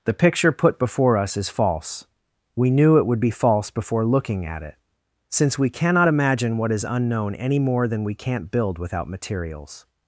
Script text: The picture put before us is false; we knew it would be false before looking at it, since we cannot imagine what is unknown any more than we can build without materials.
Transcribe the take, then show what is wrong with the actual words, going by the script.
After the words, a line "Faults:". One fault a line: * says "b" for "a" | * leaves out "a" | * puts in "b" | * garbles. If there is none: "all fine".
The picture put before us is false; we knew it would be false before looking at it, since we cannot imagine what is unknown any more than we can't build without materials.
Faults:
* says "can't" for "can"